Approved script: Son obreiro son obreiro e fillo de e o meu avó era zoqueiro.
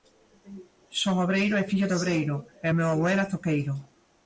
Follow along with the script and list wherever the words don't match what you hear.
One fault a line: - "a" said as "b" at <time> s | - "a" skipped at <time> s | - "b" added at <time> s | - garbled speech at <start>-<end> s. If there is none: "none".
- "son obreiro" skipped at 1.6 s
- "obreiro" added at 2.0 s